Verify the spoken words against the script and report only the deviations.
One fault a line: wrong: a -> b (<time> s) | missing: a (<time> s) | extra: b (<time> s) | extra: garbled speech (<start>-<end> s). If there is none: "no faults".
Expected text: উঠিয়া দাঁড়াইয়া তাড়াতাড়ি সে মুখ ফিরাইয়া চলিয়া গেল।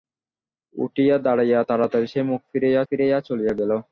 extra: ফিরাইয়া (2.9 s)